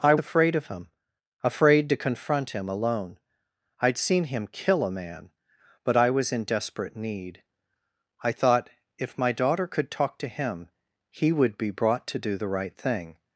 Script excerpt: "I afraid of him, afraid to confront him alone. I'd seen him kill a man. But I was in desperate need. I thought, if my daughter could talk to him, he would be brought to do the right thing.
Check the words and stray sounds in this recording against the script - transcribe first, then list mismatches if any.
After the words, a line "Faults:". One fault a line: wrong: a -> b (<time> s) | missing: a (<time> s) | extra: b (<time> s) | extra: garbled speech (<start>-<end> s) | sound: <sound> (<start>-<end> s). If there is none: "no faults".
"I afraid of him, afraid to confront him alone. I'd seen him kill a man. But I was in desperate need. I thought, if my daughter could talk to him, he would be brought to do the right thing.
Faults:
no faults